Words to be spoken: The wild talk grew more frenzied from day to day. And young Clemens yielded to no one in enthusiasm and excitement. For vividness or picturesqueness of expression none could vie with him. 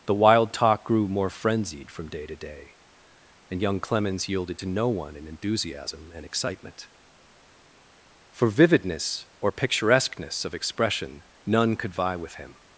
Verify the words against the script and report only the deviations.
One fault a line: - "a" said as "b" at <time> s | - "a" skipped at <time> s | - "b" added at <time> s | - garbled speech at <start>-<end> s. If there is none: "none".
none